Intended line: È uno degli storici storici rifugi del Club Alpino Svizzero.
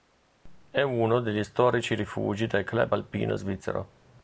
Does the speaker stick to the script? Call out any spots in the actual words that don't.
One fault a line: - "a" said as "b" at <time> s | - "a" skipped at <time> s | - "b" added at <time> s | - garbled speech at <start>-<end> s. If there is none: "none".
- "storici" skipped at 1.9 s